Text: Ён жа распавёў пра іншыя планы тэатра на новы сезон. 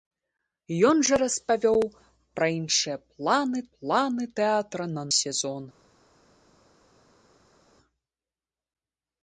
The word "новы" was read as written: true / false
false